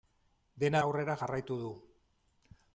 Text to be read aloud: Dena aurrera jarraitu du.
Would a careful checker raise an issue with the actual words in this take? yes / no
no